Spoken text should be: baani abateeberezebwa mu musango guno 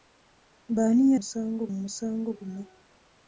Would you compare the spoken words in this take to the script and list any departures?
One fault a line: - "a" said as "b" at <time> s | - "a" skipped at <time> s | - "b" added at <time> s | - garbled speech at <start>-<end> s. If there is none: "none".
- "abateeberezebwa" said as "musango" at 1.2 s